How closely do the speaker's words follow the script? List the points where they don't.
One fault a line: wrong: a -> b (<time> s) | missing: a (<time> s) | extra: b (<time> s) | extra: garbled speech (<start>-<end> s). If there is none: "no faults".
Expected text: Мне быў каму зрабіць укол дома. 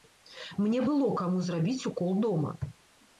wrong: быў -> было (0.9 s)